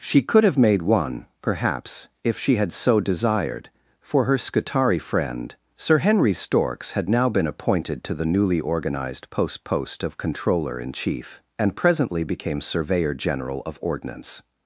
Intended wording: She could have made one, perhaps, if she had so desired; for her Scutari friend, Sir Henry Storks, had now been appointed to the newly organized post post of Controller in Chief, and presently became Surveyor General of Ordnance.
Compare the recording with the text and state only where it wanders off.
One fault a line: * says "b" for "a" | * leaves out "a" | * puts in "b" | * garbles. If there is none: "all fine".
all fine